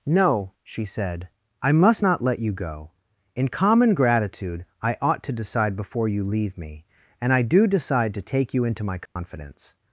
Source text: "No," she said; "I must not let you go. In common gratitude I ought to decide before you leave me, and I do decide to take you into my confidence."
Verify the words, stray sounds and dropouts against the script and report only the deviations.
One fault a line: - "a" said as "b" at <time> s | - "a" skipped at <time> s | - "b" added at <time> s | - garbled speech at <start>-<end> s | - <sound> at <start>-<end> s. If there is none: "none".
- dropout at 9.1-9.2 s